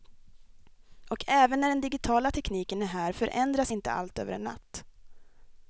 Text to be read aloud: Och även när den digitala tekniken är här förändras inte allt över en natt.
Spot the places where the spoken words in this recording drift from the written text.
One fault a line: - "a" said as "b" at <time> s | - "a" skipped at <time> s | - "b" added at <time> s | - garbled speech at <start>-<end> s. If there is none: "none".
none